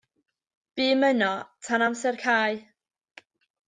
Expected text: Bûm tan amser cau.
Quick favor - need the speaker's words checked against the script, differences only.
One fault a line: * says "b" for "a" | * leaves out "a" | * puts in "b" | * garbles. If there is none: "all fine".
* puts in "yno"